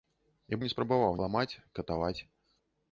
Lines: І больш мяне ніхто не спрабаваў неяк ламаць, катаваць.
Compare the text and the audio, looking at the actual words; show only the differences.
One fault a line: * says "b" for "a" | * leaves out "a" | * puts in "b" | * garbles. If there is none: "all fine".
* leaves out "больш мяне ніхто"
* leaves out "неяк"